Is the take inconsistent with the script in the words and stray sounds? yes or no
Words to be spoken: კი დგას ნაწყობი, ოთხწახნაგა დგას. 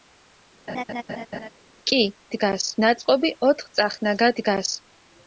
yes